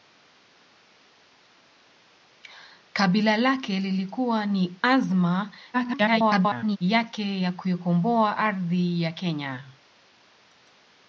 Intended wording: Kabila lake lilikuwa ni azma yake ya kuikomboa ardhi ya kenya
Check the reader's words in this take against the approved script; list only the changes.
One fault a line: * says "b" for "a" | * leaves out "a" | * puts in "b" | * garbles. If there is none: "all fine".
* garbles